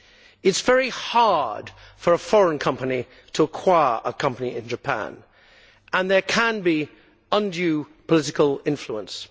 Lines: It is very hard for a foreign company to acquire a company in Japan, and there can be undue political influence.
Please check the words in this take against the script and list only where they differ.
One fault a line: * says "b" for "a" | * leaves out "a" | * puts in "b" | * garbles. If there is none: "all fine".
all fine